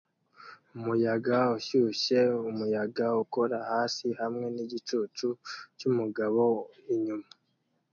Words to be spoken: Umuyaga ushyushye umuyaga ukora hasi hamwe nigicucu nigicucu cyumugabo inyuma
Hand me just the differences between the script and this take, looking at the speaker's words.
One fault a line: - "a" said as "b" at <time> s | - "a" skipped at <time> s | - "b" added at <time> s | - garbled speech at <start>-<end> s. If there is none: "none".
- "nigicucu" skipped at 5.3 s